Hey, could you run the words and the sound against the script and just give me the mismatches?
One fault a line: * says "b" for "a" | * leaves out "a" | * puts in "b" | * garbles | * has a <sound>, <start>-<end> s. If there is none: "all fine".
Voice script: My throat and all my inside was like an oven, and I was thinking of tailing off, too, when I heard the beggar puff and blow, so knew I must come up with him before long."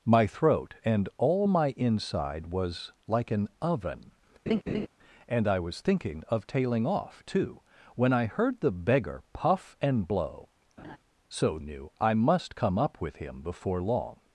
* has a laugh, 4.5-4.9 s
* has a laugh, 10.8-11.0 s